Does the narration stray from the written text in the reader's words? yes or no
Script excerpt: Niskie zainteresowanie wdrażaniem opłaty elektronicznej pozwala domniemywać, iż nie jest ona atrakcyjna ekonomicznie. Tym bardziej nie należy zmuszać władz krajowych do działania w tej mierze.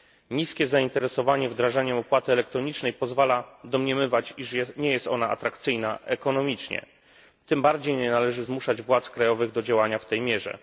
no